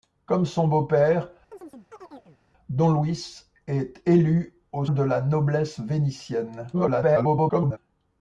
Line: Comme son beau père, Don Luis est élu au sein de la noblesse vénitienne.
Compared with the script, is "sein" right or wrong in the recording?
wrong